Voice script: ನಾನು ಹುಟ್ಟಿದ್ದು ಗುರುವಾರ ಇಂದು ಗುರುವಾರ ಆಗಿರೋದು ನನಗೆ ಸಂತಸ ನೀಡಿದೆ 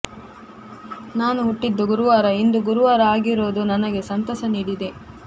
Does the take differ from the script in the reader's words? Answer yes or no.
no